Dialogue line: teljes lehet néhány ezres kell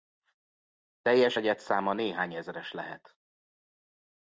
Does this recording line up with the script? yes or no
no